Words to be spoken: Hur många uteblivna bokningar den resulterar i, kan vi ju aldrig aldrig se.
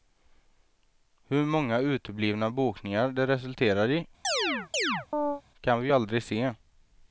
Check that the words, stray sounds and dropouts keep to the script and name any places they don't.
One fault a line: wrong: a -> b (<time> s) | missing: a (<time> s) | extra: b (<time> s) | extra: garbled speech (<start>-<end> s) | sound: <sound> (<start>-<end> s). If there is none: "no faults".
wrong: den -> det (3.1 s)
sound: chirp (4.2-5.4 s)
missing: aldrig (6.2 s)